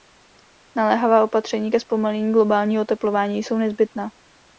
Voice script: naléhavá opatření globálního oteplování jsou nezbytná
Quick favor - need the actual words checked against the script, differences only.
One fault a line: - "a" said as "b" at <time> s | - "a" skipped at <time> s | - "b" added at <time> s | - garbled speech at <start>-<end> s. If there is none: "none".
- "ke zpomalení" added at 1.7 s